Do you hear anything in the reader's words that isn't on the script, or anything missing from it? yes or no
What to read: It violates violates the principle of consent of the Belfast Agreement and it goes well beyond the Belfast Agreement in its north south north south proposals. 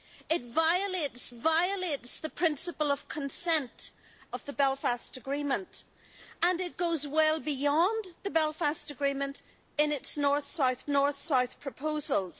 no